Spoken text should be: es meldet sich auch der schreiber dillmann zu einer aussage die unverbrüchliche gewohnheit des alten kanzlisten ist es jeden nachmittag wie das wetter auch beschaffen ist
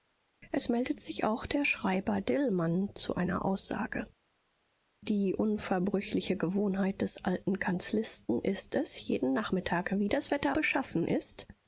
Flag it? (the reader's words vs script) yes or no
yes